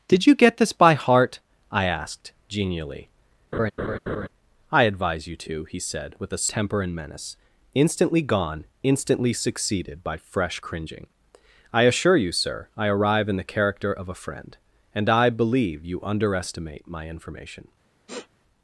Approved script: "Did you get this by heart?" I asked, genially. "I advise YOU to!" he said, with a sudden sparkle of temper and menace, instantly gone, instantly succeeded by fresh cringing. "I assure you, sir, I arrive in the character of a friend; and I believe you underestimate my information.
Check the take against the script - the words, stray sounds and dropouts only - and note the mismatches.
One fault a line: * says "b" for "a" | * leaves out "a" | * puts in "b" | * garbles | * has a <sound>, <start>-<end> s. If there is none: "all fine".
* has a laugh, 3.5-4.3 s
* leaves out "sudden sparkle of"
* has a sniff, 18.1-18.3 s